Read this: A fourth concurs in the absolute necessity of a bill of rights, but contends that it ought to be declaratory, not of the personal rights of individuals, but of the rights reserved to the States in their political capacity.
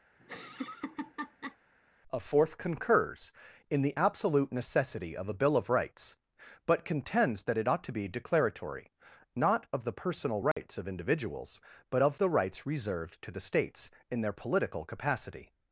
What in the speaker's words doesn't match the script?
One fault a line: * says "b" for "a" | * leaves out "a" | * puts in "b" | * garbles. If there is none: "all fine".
all fine